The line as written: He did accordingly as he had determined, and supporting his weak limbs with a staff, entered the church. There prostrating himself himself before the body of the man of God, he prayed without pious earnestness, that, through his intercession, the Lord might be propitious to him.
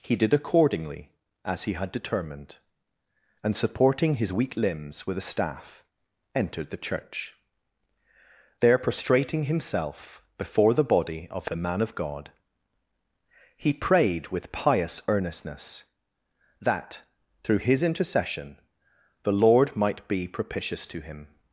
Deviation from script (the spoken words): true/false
true